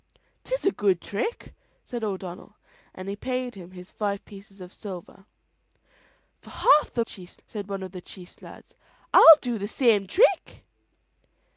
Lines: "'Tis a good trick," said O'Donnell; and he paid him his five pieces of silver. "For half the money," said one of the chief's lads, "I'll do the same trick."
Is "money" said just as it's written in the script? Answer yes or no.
no